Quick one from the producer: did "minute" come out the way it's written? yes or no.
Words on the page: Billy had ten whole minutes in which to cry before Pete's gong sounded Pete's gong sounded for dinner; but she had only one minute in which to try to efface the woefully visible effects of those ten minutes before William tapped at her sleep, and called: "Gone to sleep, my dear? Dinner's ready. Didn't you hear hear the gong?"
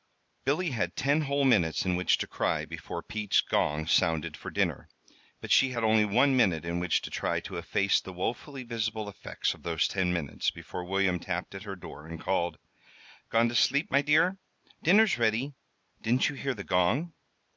yes